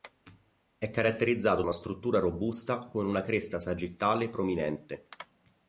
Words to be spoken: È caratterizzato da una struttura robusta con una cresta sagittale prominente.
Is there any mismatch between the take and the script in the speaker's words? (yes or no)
yes